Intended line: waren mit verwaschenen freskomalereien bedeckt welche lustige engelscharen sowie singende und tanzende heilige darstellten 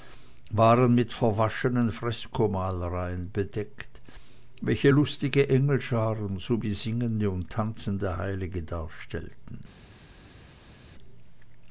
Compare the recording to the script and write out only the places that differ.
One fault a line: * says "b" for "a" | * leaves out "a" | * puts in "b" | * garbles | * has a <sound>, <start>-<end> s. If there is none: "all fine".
all fine